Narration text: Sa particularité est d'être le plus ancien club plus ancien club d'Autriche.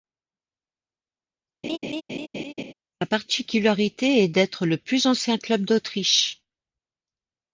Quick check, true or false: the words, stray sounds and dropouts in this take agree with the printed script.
false